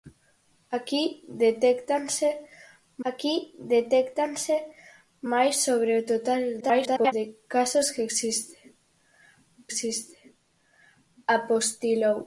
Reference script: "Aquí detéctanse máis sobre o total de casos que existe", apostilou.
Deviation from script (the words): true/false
true